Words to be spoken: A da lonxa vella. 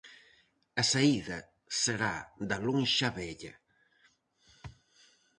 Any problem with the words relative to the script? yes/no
yes